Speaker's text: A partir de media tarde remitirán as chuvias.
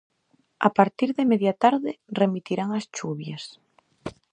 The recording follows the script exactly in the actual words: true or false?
true